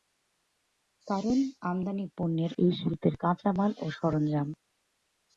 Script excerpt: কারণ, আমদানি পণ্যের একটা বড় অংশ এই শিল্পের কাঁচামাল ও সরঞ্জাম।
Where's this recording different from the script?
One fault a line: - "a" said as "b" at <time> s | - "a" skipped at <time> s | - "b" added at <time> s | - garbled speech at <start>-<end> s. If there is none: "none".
- "একটা বড় অংশ" skipped at 2.5 s